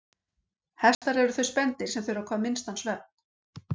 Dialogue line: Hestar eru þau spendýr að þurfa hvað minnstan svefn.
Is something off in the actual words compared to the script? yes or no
yes